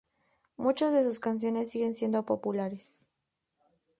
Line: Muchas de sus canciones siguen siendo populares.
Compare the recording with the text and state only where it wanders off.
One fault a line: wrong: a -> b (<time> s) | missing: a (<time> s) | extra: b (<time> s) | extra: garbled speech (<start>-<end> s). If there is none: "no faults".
no faults